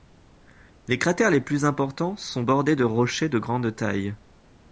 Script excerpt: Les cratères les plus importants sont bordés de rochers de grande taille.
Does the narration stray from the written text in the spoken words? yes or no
no